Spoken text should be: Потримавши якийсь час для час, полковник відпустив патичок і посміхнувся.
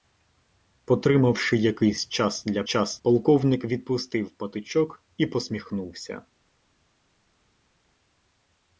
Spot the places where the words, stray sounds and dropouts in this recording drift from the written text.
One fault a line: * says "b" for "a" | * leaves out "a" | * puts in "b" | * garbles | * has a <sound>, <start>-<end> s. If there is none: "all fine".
all fine